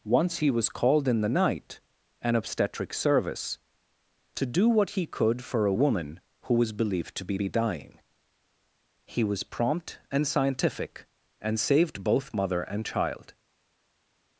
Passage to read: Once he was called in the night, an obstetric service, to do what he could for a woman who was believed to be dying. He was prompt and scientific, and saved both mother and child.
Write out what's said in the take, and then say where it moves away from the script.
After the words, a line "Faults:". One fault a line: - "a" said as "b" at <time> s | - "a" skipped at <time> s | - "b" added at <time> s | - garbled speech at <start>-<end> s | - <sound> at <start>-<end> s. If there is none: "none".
Once he was called in the night, an obstetric service, to do what he could for a woman who was believed to be be dying. He was prompt and scientific, and saved both mother and child.
Faults:
- "be" added at 7.4 s